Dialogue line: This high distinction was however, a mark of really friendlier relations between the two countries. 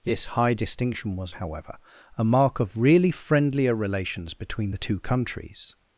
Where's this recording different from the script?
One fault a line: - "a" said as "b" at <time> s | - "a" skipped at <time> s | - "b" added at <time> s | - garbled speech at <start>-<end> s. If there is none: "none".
none